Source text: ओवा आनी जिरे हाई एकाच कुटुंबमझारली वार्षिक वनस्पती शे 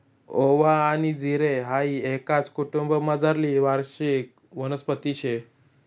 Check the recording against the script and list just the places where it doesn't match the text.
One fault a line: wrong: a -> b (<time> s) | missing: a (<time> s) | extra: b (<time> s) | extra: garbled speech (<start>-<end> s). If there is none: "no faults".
no faults